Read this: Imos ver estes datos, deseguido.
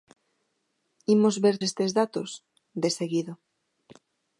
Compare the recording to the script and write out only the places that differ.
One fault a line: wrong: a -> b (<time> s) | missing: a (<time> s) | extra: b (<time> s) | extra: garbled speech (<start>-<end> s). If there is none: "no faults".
no faults